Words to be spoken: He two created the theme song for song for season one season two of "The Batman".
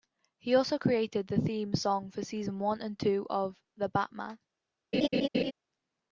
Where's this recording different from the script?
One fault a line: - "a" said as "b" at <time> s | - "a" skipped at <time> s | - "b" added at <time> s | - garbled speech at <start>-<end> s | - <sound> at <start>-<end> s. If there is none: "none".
- "two" said as "also" at 0.6 s
- "song for" skipped at 2.2 s
- "season" said as "and" at 2.8 s
- laugh at 4.9-5.5 s